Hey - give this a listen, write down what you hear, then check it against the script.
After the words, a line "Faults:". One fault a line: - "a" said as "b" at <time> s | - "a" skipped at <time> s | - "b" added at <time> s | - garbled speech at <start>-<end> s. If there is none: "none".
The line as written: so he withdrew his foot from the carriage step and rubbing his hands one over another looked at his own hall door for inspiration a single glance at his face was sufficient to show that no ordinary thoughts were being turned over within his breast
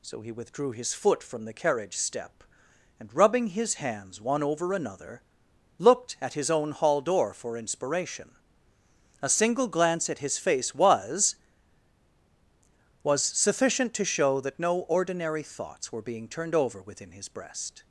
so he withdrew his foot from the carriage step and rubbing his hands one over another looked at his own hall door for inspiration a single glance at his face was was sufficient to show that no ordinary thoughts were being turned over within his breast
Faults:
- "was" added at 13.0 s